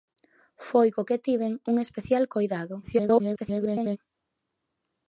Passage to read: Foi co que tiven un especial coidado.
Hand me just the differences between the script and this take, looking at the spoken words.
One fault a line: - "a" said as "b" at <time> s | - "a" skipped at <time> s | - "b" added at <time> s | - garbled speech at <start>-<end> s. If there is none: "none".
- garbled speech at 2.8-4.0 s